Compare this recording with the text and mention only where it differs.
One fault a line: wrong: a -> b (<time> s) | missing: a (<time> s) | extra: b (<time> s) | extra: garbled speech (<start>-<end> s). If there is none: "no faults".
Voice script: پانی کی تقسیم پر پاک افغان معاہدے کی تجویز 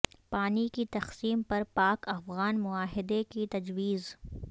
no faults